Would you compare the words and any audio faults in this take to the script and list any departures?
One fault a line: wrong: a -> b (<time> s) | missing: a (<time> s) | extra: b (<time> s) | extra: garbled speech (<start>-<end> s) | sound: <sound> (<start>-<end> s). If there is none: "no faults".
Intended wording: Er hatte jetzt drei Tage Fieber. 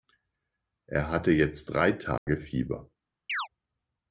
sound: dropout (2.2-2.3 s)
sound: chirp (3.3-3.5 s)